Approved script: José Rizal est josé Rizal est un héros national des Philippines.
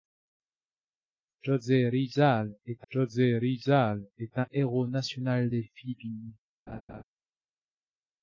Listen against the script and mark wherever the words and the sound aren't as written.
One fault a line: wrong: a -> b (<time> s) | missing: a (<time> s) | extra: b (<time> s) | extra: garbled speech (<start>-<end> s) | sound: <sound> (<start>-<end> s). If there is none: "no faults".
sound: laugh (6.7-7.0 s)